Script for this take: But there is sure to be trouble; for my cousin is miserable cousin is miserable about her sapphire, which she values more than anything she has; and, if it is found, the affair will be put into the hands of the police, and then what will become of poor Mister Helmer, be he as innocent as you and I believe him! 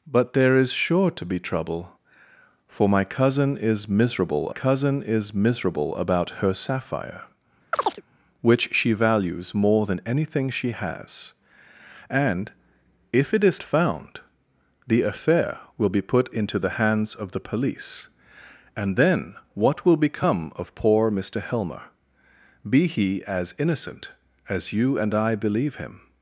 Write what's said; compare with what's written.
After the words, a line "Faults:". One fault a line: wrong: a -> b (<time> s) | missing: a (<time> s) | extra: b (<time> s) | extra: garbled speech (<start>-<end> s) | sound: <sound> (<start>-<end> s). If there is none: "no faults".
But there is sure to be trouble; for my cousin is miserable cousin is miserable about her sapphire, which she values more than anything she has; and, if it is found, the affair will be put into the hands of the police, and then what will become of poor Mister Helmer, be he as innocent as you and I believe him!
Faults:
sound: chirp (7.7-8.0 s)